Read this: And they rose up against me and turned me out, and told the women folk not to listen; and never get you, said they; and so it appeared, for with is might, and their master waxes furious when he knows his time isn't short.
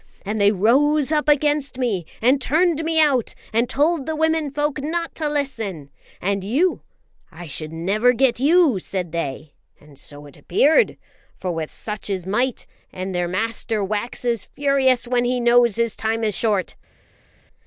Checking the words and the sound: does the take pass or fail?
fail